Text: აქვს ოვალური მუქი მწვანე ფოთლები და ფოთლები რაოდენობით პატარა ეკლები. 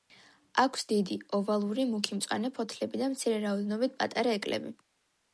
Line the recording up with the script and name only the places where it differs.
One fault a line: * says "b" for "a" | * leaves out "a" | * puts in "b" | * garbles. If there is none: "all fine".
* puts in "დიდი"
* says "მცირე" for "ფოთლები"